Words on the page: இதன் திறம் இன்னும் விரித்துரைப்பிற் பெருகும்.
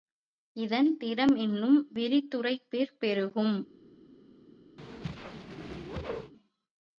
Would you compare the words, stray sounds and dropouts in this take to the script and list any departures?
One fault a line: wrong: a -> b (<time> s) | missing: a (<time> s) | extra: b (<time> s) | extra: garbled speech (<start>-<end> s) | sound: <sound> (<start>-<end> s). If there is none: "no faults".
sound: whoosh (4.8-6.3 s)